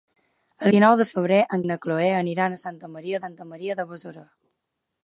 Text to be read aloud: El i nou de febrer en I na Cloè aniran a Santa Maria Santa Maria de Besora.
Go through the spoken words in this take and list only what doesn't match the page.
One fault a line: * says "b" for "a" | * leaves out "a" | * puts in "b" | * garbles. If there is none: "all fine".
all fine